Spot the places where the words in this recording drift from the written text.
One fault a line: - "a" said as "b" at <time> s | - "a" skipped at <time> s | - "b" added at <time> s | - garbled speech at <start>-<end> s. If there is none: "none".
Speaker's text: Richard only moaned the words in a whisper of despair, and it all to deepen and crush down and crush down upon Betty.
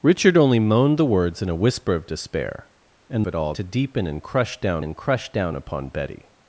none